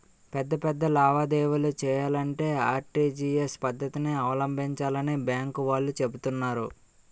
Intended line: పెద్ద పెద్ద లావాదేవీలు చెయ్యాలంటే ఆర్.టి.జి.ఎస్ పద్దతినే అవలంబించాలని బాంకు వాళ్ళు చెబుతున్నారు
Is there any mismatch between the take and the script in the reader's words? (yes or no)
no